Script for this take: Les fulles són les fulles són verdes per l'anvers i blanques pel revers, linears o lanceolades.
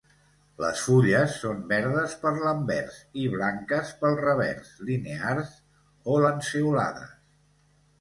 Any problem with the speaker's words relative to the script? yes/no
yes